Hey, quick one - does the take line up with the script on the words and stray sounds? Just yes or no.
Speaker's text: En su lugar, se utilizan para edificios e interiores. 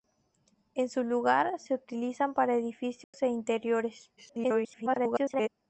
no